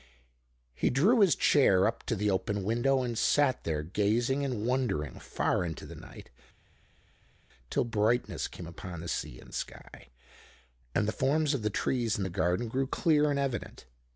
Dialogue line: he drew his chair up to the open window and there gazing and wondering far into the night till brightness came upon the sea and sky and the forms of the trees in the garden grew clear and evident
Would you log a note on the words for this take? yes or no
yes